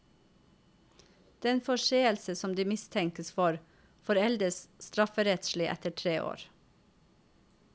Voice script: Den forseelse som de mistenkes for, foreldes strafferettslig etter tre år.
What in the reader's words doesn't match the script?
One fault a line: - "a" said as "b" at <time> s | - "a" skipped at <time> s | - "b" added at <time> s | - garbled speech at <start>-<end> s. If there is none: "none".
none